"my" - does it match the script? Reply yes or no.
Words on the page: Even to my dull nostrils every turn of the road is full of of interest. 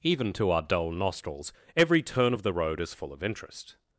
no